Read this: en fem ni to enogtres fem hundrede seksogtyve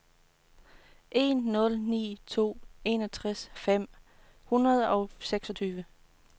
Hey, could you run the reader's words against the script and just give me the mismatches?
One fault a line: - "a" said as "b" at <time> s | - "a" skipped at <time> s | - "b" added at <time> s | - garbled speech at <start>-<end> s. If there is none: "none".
- "fem" said as "nul" at 1.4 s
- "og" added at 4.9 s